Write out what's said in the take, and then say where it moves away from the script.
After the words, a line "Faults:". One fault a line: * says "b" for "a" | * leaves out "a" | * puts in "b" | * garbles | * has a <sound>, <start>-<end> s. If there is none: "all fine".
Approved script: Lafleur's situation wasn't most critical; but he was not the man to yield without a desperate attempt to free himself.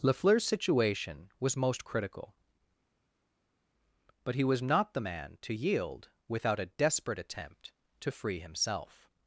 Lafleur's situation was most critical; but he was not the man to yield without a desperate attempt to free himself.
Faults:
* says "was" for "wasn't"